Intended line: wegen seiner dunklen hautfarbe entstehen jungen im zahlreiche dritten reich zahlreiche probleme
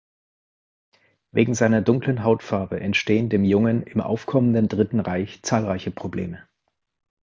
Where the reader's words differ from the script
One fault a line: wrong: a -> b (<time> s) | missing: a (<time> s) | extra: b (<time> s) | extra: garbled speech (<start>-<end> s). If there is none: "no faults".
extra: dem (3.3 s)
wrong: zahlreiche -> aufkommenden (4.0 s)